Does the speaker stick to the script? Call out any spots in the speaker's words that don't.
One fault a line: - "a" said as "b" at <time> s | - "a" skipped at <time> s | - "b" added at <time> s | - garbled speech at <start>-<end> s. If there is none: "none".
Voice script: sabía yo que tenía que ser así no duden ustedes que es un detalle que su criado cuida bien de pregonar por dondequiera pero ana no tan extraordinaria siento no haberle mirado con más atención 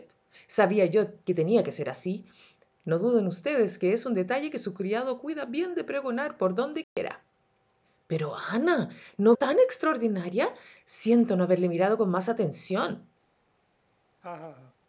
none